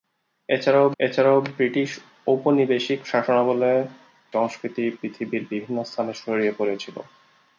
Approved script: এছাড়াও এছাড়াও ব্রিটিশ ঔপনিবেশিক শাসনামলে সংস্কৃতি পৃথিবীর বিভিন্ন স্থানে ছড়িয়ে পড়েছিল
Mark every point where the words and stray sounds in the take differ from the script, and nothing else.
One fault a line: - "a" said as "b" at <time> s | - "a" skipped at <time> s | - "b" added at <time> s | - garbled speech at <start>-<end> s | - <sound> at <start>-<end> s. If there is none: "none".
none